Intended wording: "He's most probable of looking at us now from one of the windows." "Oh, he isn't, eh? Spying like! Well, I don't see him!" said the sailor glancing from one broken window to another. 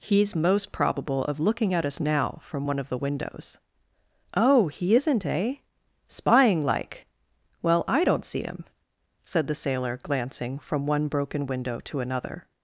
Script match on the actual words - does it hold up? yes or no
yes